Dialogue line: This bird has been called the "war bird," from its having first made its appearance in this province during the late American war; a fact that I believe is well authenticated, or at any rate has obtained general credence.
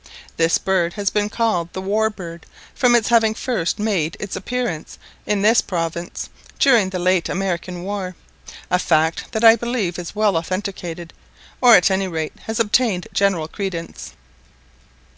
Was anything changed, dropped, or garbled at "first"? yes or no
no